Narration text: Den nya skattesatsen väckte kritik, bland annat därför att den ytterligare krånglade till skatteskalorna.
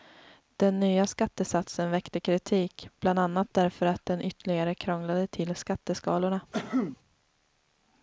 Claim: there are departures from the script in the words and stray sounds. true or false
true